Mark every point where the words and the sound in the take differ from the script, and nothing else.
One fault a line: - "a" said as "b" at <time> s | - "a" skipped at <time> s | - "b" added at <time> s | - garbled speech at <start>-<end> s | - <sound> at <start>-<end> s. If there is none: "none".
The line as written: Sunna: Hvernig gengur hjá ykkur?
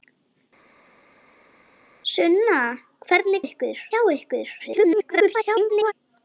- "gengur" said as "ykkur" at 3.5 s
- garbled speech at 4.6-5.9 s